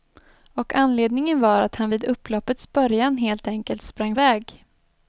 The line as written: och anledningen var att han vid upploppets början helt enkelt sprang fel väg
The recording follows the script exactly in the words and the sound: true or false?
false